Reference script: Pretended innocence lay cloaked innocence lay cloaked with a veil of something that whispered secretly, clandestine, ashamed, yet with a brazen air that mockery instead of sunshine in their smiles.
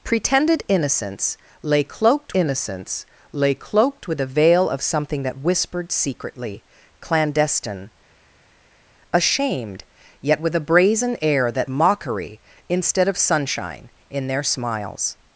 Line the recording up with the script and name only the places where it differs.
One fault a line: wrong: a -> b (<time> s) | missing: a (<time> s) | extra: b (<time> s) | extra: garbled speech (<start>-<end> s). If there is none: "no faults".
no faults